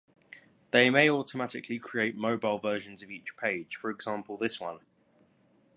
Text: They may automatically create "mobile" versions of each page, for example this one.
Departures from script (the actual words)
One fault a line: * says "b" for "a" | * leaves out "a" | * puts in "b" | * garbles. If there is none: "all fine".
all fine